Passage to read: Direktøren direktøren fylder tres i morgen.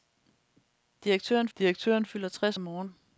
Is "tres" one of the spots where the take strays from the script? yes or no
no